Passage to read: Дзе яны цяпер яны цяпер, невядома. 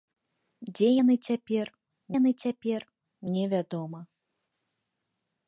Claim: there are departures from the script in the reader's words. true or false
false